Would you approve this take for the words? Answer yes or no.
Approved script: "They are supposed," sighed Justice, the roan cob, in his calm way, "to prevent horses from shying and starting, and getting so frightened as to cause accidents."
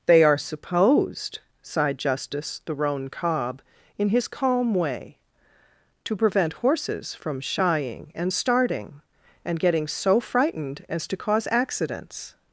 yes